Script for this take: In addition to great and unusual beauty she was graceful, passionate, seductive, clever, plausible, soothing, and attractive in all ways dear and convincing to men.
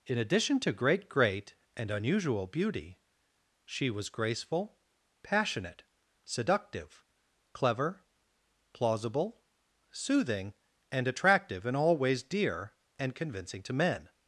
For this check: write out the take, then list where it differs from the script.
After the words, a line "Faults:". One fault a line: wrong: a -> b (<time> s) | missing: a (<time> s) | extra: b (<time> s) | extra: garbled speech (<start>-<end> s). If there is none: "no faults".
In addition to great great and unusual beauty she was graceful, passionate, seductive, clever, plausible, soothing, and attractive in all ways dear and convincing to men.
Faults:
extra: great (1.1 s)